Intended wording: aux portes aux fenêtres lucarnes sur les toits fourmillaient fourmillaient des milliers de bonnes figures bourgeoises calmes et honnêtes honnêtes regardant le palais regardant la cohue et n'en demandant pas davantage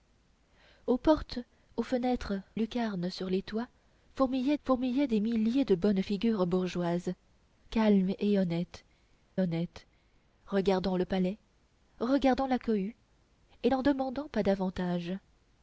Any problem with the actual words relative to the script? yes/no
no